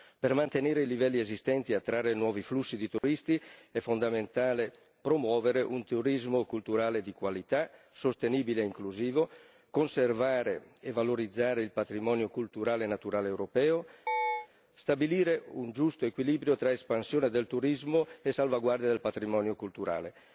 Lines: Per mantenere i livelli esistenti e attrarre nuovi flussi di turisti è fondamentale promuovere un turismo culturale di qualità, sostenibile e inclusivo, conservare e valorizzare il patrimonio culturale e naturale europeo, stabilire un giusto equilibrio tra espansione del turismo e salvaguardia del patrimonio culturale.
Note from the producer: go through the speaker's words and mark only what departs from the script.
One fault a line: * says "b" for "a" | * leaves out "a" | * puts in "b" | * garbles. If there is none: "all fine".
all fine